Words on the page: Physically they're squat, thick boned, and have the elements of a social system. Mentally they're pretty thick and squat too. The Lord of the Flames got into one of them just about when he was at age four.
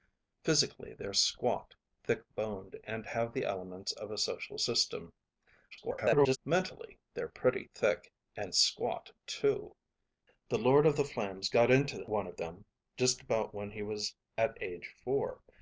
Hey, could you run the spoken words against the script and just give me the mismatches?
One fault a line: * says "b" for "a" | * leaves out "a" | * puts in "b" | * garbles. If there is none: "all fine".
* garbles